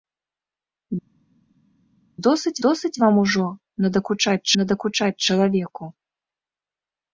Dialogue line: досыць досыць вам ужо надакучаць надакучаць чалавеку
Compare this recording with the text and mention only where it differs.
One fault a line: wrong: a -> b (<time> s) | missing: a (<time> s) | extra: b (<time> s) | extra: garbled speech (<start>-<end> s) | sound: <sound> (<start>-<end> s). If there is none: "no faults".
no faults